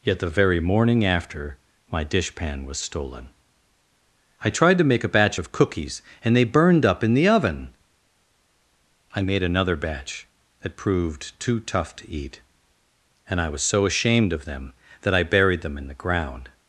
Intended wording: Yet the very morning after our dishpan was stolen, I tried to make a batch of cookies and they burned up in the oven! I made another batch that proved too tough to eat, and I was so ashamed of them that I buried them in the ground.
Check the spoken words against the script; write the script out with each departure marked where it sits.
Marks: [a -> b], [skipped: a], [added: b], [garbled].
Yet the very morning after [our -> my] dishpan was stolen, I tried to make a batch of cookies and they burned up in the oven! I made another batch that proved too tough to eat, and I was so ashamed of them that I buried them in the ground.